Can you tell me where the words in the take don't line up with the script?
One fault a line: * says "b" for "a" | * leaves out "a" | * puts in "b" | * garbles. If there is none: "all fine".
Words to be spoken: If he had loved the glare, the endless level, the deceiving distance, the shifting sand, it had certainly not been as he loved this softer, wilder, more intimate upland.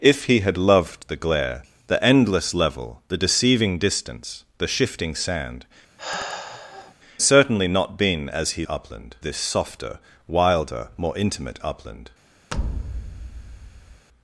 * leaves out "it had"
* says "upland" for "loved"